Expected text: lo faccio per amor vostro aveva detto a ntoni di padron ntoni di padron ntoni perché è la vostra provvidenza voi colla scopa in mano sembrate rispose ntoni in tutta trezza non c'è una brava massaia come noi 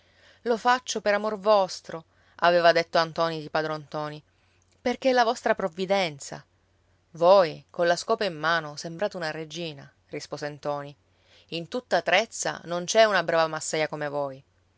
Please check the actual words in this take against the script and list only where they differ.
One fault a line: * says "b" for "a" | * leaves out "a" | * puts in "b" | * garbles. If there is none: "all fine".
* leaves out "di padron ntoni"
* puts in "una regina"
* says "voi" for "noi"